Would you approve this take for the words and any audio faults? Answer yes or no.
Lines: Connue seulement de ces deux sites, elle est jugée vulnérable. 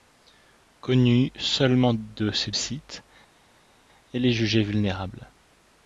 no